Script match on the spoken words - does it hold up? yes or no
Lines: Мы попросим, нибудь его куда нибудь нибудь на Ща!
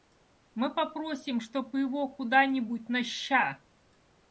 no